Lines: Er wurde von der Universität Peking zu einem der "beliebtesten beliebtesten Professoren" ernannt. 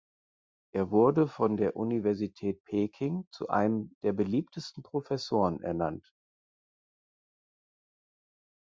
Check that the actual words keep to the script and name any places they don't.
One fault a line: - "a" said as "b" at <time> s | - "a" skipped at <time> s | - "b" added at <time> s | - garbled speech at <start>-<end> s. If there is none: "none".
- "beliebtesten" skipped at 4.8 s